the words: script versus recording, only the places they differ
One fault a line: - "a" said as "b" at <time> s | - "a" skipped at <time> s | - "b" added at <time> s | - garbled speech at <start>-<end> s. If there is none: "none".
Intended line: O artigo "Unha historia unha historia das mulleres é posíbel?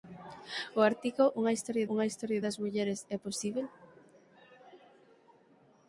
none